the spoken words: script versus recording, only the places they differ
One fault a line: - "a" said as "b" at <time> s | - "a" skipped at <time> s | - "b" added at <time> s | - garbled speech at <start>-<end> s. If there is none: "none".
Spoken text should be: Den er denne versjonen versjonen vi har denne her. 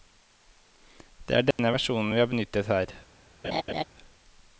- "Den" said as "Det" at 1.3 s
- "versjonen" skipped at 2.1 s
- "denne" said as "benyttet" at 2.3 s